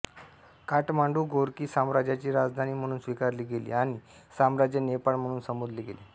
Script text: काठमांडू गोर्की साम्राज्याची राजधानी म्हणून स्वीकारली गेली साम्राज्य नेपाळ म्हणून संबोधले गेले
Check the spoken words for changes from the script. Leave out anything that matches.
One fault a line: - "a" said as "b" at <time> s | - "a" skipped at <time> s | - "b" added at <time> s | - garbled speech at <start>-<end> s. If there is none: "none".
- "आणि" added at 3.7 s